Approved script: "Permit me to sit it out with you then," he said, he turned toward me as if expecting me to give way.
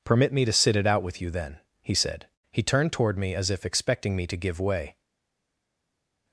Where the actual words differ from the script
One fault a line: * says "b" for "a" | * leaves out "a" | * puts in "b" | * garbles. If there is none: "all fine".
all fine